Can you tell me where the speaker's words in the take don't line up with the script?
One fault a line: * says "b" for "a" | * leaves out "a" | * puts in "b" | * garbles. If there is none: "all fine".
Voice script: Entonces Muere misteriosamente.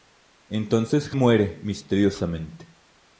all fine